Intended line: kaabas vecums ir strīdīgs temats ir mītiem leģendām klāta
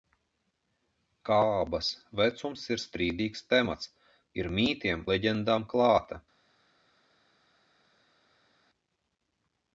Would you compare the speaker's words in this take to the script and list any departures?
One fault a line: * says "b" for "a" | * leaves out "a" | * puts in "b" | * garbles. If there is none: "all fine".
all fine